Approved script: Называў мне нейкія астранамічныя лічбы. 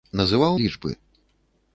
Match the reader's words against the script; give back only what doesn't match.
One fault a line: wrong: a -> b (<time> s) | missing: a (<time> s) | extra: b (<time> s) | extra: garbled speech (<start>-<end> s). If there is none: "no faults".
missing: мне нейкія астранамічныя (0.6 s)